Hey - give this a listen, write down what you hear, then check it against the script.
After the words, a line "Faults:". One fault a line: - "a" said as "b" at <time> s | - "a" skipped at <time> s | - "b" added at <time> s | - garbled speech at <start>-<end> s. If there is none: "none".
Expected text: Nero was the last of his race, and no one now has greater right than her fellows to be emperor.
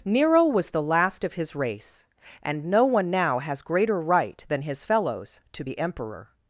Nero was the last of his race, and no one now has greater right than his fellows to be emperor.
Faults:
- "her" said as "his" at 4.6 s